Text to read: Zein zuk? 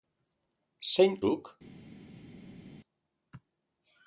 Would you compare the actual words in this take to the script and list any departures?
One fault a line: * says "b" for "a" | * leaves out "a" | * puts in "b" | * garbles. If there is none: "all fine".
all fine